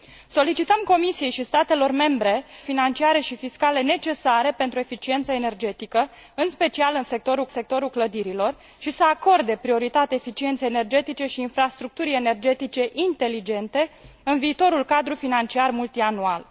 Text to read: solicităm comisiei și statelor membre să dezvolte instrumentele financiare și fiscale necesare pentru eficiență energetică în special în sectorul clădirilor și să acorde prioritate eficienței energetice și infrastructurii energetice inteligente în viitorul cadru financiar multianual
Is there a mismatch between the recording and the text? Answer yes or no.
yes